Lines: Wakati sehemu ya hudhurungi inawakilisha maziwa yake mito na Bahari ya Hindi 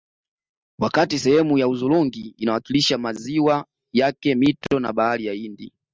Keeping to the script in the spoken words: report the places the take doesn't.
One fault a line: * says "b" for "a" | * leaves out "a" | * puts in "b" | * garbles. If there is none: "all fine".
all fine